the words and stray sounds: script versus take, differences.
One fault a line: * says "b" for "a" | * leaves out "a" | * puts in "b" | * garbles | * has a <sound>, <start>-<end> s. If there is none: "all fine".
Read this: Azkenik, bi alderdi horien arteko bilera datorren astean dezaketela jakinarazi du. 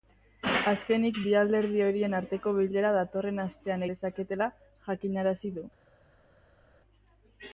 all fine